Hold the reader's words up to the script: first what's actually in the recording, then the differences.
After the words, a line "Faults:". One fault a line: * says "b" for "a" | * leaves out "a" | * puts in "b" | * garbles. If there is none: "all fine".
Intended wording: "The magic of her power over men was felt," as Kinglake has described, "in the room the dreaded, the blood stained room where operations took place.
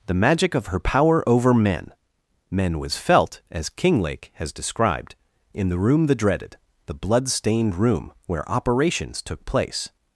"The magic of her power over men men was felt," as Kinglake has described, "in the room the dreaded, the blood stained room where operations took place.
Faults:
* puts in "men"